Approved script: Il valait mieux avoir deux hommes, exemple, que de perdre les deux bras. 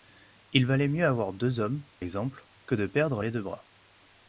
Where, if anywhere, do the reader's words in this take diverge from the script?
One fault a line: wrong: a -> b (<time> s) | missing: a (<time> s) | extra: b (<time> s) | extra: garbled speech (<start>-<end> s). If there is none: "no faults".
no faults